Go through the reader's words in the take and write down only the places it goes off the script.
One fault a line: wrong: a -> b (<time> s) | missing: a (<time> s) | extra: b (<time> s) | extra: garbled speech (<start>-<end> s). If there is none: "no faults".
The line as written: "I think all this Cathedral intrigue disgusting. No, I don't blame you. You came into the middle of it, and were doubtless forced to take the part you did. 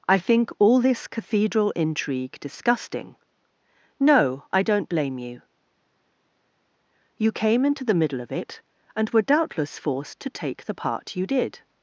no faults